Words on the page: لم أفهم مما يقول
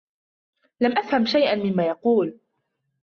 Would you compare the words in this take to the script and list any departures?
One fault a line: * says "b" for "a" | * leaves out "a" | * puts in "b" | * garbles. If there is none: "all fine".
* puts in "شيئا"